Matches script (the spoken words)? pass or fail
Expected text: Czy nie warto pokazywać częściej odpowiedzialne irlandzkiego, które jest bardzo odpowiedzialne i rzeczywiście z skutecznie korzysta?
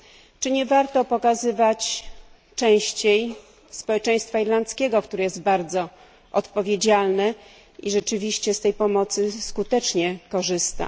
fail